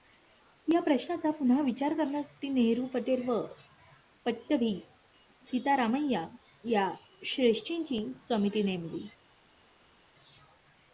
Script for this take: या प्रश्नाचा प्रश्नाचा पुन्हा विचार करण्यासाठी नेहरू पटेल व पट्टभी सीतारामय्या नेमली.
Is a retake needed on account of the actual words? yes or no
yes